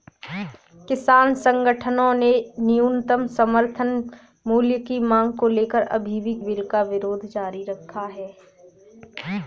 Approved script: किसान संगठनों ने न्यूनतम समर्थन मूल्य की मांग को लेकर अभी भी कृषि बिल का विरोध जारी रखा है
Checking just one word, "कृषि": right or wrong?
wrong